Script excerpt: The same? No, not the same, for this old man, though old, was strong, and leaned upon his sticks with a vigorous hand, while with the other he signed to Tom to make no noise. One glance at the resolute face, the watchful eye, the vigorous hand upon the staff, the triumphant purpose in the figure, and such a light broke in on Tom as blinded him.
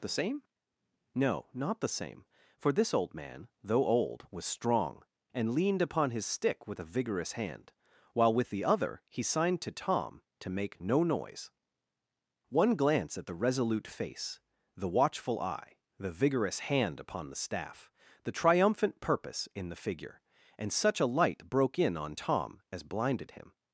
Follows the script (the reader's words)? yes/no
no